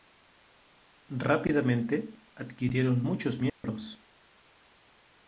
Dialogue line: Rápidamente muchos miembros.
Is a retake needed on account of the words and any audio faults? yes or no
yes